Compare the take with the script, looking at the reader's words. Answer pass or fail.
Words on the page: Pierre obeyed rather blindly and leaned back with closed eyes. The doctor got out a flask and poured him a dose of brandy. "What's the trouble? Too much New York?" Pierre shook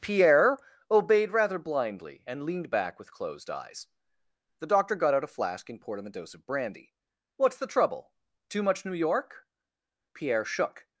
pass